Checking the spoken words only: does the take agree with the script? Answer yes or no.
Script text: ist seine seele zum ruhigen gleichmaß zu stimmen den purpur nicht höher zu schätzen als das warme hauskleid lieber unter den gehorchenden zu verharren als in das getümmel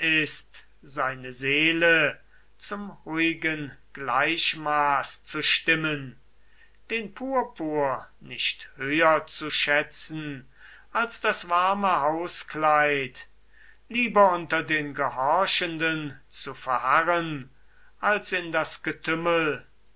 yes